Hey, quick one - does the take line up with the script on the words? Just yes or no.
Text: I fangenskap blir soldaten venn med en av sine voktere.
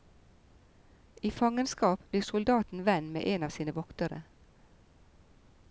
yes